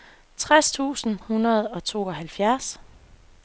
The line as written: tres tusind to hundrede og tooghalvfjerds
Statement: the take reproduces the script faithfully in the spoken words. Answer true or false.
false